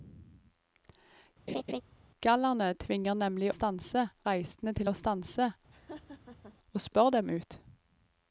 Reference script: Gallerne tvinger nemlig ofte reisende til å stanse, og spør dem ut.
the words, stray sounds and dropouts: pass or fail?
fail